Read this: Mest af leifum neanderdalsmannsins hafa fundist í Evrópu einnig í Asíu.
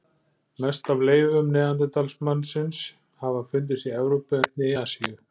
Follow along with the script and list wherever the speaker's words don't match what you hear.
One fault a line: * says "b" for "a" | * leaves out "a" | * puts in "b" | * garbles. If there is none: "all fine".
all fine